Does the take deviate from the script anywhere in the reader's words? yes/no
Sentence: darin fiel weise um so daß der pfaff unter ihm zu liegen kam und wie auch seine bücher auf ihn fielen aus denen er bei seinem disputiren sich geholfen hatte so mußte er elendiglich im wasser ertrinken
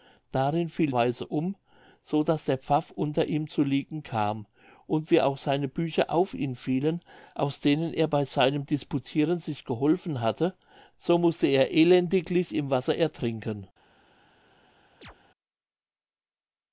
no